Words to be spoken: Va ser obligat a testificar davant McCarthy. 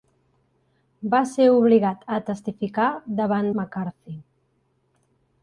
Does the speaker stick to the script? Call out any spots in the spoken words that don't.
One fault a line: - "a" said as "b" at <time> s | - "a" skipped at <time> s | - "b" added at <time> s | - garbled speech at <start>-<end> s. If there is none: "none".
none